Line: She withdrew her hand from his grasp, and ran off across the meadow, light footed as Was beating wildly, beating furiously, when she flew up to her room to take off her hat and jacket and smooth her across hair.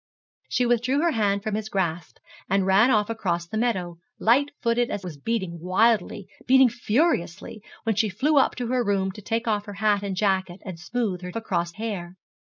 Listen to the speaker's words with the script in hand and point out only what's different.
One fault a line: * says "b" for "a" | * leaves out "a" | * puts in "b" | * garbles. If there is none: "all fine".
all fine